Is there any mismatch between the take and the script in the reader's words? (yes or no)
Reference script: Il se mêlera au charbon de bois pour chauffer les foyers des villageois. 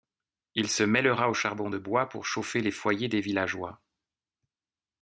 no